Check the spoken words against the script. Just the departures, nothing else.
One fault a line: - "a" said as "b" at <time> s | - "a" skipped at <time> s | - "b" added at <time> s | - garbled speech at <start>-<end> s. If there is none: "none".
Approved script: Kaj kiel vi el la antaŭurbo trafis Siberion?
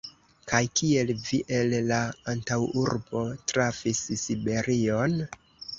none